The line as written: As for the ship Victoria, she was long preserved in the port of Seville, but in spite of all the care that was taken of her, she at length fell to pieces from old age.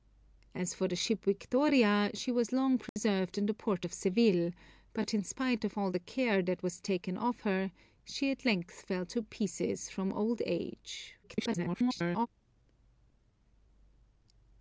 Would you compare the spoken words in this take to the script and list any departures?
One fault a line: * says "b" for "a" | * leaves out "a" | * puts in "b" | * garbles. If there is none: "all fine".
* garbles